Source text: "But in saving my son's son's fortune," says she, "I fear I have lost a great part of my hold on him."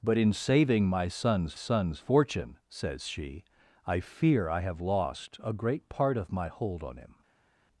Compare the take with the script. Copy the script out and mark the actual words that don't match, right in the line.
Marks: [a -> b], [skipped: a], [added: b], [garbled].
"But in saving my son's son's fortune," says she, "I fear I have lost a great part of my hold on him."